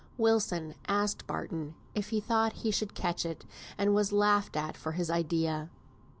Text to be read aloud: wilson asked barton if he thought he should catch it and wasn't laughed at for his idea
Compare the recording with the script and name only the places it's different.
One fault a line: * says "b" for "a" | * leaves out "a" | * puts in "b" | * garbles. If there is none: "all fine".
* says "was" for "wasn't"